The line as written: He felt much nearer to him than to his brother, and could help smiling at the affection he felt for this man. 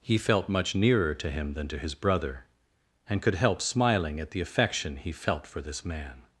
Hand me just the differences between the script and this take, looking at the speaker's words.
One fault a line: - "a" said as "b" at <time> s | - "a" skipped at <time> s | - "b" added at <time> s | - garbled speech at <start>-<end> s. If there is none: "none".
none